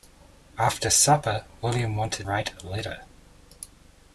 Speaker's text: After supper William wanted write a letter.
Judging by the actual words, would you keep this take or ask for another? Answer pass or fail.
pass